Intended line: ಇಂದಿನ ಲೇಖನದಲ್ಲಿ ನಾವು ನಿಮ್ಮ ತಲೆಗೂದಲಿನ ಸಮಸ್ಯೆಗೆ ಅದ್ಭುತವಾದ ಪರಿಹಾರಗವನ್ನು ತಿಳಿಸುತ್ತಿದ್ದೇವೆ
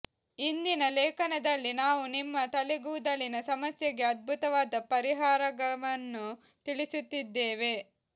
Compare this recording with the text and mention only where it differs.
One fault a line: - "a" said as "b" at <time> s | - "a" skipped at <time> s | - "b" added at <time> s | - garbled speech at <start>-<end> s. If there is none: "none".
none